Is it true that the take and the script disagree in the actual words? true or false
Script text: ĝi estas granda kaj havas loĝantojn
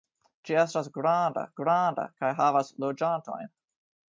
true